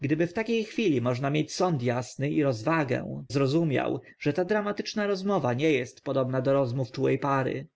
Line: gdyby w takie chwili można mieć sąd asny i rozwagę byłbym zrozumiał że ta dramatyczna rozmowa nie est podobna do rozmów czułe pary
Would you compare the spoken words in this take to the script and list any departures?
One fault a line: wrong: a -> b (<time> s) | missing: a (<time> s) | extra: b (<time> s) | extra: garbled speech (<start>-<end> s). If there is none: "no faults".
missing: byłbym (3.2 s)